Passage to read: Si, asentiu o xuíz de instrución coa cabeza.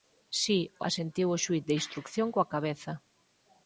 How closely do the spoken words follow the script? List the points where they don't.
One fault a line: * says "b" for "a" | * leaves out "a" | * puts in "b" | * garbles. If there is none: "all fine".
all fine